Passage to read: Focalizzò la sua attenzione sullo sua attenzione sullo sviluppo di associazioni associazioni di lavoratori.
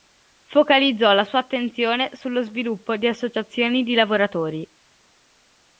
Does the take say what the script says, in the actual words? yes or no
no